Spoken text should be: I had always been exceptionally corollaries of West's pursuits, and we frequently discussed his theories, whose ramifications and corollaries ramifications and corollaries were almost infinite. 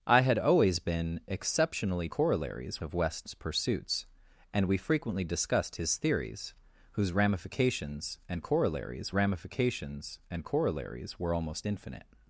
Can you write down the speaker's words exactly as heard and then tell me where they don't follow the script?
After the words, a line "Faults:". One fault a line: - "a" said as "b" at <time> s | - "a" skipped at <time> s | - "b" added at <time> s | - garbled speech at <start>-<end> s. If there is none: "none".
I had always been exceptionally corollaries of West's pursuits, and we frequently discussed his theories, whose ramifications and corollaries ramifications and corollaries were almost infinite.
Faults:
none